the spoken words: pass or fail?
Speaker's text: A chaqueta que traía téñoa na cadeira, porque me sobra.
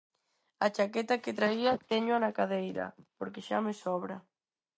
fail